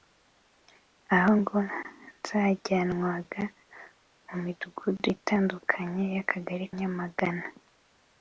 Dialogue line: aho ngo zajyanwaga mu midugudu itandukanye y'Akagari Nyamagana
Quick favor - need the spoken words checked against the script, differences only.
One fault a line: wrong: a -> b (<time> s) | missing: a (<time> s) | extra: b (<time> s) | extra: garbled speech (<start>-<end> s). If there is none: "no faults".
no faults